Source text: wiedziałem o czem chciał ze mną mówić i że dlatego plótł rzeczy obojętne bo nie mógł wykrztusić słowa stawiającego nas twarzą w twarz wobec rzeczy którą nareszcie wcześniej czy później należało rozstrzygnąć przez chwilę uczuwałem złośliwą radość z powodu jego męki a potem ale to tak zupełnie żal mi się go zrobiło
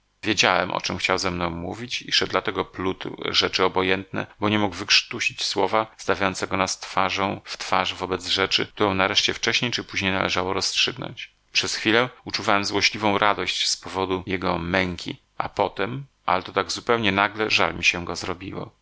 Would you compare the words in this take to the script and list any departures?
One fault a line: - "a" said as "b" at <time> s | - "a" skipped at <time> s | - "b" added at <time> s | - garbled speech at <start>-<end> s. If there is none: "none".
- "nagle" added at 17.1 s